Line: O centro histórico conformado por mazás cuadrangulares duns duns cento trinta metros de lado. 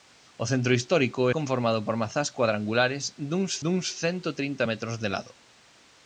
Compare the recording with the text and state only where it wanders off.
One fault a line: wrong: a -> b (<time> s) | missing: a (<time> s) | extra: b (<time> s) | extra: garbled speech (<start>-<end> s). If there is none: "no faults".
no faults